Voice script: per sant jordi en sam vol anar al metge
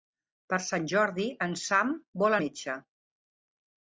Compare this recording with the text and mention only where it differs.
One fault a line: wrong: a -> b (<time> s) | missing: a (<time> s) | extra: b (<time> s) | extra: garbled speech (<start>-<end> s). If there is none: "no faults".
missing: anar al (2.4 s)